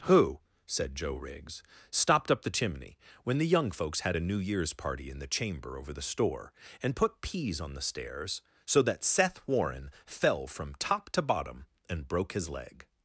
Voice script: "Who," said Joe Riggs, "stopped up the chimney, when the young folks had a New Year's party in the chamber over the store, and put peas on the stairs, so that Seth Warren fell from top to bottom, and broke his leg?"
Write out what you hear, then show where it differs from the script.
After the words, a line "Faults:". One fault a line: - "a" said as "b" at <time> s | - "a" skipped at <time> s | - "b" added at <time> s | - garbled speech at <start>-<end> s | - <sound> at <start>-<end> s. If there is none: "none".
"Who," said Joe Riggs, "stopped up the chimney, when the young folks had a New Year's party in the chamber over the store, and put peas on the stairs, so that Seth Warren fell from top to bottom, and broke his leg?"
Faults:
none